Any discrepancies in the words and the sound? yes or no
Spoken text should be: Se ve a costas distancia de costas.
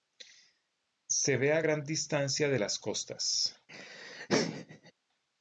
yes